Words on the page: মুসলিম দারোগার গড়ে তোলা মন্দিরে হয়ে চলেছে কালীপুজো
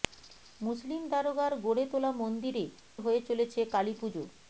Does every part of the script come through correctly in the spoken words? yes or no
yes